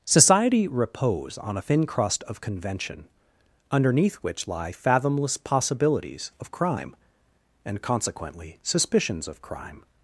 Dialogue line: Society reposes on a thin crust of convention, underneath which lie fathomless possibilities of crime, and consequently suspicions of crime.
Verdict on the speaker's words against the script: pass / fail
fail